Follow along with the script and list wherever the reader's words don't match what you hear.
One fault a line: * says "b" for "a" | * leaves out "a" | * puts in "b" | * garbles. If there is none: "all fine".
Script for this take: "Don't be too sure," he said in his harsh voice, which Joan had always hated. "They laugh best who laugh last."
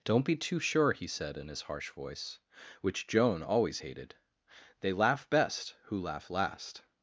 * leaves out "had"